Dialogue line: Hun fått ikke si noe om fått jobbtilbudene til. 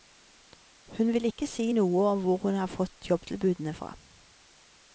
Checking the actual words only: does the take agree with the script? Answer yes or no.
no